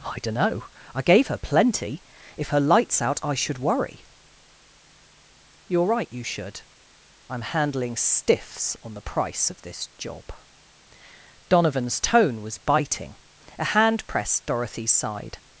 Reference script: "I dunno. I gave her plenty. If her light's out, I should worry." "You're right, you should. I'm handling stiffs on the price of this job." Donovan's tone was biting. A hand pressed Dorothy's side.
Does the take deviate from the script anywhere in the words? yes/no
no